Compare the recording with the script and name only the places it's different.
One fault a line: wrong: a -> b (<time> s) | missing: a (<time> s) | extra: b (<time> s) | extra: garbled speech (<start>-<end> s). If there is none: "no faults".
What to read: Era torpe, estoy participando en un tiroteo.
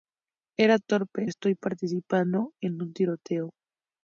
no faults